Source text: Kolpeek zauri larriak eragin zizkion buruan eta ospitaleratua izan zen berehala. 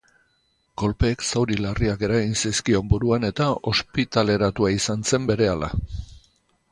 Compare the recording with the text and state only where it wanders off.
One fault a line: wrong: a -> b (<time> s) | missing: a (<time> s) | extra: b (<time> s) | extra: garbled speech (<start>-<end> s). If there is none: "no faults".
no faults